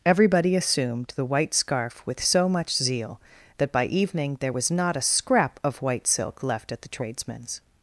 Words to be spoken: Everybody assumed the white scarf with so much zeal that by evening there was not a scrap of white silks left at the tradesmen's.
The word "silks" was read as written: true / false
false